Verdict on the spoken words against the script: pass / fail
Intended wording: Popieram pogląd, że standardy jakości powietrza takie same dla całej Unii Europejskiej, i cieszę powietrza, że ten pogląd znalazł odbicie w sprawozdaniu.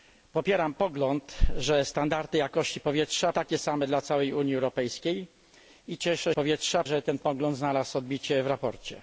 pass